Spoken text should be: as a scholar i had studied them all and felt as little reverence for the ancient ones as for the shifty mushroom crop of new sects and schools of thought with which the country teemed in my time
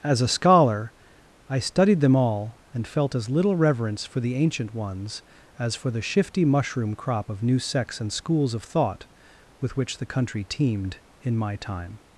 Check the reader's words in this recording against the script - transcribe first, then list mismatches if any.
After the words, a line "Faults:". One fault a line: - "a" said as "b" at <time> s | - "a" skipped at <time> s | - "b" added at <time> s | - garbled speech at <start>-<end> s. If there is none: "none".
as a scholar i studied them all and felt as little reverence for the ancient ones as for the shifty mushroom crop of new sects and schools of thought with which the country teemed in my time
Faults:
- "had" skipped at 1.6 s